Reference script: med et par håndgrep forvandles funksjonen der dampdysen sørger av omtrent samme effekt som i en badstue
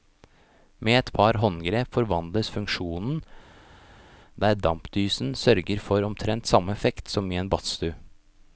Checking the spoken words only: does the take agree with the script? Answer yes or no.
no